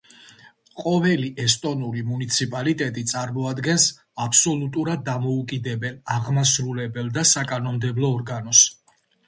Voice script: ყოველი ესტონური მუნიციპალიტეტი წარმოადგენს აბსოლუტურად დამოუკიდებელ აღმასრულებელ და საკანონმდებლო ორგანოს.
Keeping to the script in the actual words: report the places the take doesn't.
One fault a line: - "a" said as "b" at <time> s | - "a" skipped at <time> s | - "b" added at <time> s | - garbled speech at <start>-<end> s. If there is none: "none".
none